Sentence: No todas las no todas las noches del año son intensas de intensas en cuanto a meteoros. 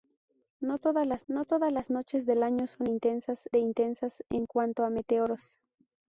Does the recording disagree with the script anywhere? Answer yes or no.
no